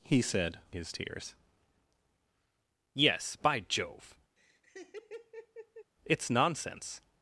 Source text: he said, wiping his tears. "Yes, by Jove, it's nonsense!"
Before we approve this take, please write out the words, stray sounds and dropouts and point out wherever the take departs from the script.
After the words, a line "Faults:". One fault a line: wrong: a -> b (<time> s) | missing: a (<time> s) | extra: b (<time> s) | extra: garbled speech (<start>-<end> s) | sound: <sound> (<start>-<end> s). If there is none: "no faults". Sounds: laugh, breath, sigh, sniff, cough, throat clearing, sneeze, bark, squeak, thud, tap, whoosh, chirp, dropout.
he said, his tears. "Yes, by Jove, it's nonsense!"
Faults:
missing: wiping (0.6 s)
sound: laugh (4.4-5.9 s)